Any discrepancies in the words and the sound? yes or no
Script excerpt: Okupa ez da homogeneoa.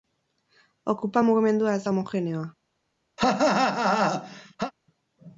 yes